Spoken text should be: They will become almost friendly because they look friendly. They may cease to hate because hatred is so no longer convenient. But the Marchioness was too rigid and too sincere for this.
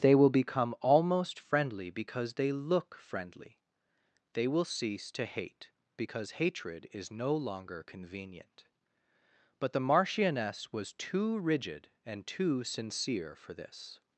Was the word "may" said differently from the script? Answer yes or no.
yes